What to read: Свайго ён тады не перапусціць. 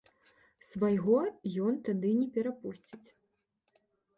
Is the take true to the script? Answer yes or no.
yes